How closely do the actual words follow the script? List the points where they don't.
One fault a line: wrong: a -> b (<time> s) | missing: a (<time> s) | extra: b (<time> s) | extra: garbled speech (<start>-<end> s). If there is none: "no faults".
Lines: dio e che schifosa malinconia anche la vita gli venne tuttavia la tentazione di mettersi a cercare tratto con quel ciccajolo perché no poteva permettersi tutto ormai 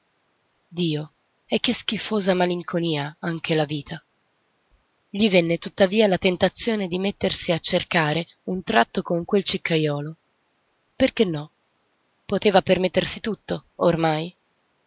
extra: un (8.4 s)